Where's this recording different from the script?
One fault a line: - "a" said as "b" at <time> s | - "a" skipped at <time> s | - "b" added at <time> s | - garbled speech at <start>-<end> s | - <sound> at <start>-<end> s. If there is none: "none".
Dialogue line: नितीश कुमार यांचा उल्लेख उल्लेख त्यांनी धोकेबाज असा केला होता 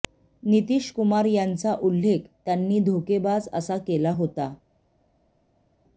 - "उल्लेख" skipped at 2.2 s